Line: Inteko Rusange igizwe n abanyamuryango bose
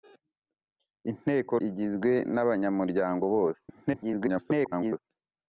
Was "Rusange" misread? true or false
true